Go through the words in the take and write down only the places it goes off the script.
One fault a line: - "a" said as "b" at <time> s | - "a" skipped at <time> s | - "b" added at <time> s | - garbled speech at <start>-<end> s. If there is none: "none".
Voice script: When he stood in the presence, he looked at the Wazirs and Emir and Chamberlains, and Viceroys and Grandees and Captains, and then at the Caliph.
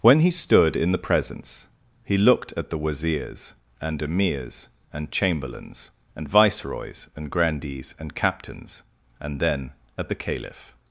- "Emir" said as "Emirs" at 4.0 s